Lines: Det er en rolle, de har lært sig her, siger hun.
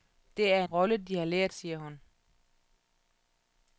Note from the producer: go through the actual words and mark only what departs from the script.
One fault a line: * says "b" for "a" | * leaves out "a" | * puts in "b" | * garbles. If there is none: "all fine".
* leaves out "en"
* leaves out "sig her"